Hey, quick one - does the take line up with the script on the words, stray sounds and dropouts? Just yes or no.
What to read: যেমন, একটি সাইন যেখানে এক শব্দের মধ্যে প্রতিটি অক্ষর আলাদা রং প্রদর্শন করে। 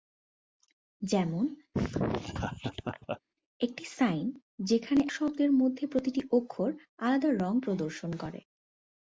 no